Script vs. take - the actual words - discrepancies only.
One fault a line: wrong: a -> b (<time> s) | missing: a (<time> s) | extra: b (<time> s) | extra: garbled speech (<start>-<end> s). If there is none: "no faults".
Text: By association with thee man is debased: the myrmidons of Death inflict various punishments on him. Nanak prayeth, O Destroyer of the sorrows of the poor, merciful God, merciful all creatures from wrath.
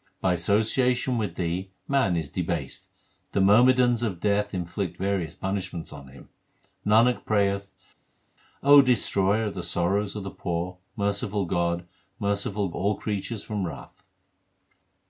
no faults